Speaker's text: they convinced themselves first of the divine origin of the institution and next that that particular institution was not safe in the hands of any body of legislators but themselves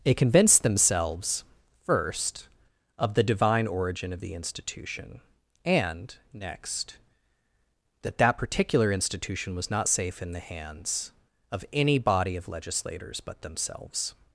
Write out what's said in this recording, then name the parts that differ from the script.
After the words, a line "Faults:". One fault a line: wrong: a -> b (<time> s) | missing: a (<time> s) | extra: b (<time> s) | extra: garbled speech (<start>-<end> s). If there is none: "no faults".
they convinced themselves first of the divine origin of the institution and next that that particular institution was not safe in the hands of any body of legislators but themselves
Faults:
no faults